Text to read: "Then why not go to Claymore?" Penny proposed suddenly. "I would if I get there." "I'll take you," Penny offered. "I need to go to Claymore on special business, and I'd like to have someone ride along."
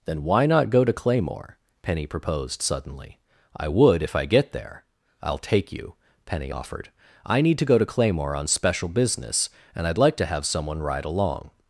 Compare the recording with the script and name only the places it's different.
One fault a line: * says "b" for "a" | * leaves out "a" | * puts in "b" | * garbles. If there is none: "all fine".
all fine